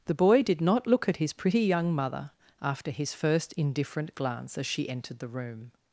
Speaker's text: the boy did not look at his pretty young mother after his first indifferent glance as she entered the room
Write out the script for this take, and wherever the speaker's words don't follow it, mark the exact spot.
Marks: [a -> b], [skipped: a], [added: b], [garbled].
the boy did not look at his pretty young mother after his first indifferent glance as she entered the room